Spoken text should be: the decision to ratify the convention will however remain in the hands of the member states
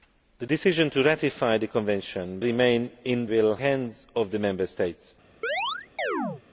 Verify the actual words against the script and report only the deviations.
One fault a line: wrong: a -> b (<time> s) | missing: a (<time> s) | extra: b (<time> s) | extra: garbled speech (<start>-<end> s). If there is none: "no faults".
missing: will however (2.4 s)
wrong: the -> will (3.3 s)